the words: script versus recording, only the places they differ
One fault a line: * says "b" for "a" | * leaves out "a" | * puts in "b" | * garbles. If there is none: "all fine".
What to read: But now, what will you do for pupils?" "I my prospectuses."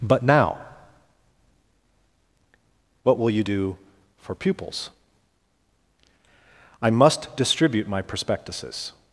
* puts in "must distribute"